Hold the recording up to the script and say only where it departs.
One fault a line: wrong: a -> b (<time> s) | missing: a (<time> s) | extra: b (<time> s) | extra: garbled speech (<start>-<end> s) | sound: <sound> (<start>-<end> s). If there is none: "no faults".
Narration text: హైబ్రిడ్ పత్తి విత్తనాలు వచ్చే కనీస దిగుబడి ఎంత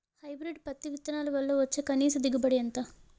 extra: వల్ల (1.3 s)